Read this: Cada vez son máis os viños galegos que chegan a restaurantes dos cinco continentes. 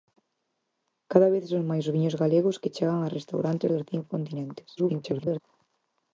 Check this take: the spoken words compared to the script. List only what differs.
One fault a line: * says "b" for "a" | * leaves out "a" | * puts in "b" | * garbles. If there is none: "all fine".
* garbles